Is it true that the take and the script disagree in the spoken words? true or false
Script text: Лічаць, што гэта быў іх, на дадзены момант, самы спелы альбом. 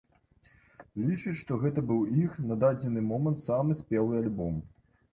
false